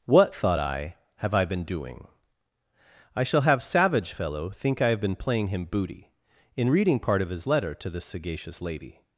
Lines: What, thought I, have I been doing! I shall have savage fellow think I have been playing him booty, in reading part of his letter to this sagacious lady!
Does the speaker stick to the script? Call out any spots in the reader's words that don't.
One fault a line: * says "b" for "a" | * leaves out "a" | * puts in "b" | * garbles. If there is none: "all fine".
all fine